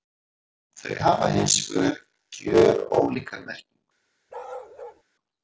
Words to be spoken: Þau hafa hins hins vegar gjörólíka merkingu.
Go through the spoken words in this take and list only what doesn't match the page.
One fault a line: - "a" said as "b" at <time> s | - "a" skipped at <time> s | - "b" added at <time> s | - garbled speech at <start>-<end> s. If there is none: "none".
- "hins" skipped at 1.6 s